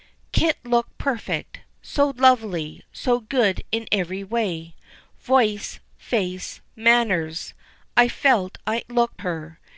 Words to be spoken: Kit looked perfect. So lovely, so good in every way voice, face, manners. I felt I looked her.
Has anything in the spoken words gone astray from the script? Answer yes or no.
no